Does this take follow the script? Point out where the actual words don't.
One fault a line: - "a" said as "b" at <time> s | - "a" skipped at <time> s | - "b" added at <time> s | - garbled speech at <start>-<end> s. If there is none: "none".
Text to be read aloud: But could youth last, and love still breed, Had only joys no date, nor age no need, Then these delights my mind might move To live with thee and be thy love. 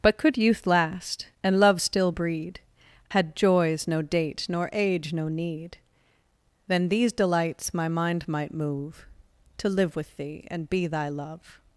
- "only" skipped at 3.4 s